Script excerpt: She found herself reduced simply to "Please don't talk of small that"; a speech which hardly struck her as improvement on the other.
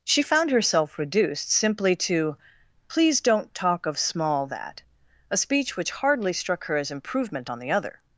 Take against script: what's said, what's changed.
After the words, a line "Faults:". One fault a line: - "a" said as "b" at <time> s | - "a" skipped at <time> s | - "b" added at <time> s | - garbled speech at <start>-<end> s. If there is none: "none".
She found herself reduced simply to "Please don't talk of small that"; a speech which hardly struck her as improvement on the other.
Faults:
none